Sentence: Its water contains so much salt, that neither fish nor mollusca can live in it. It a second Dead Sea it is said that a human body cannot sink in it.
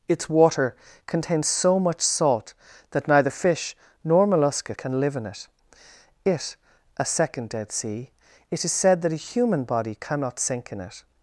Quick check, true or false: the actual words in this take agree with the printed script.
true